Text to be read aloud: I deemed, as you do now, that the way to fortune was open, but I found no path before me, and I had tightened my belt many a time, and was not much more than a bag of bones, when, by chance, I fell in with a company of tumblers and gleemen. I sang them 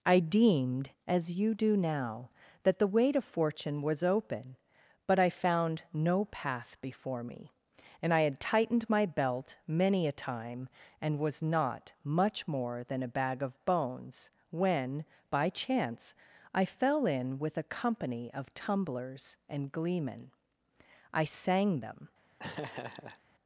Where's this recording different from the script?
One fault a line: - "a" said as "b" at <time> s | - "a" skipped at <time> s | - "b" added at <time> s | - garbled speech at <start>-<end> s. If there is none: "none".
none